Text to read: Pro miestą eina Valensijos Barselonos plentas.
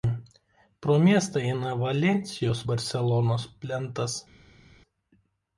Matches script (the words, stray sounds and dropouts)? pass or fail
pass